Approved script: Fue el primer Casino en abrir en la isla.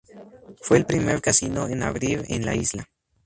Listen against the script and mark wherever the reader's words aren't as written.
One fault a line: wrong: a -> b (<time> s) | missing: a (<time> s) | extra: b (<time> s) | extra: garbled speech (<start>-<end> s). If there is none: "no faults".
no faults